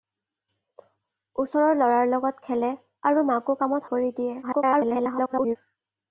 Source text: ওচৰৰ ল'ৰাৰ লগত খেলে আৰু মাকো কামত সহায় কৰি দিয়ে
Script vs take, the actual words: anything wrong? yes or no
yes